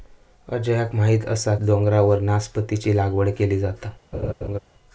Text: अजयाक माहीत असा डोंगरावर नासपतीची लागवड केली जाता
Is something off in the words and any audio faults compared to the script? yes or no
yes